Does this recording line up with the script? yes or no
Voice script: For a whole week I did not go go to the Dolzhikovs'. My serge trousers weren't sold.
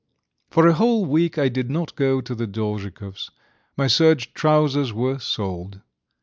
no